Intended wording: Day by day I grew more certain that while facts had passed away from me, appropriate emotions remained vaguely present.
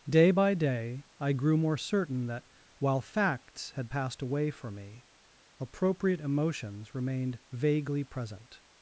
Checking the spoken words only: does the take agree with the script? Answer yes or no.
no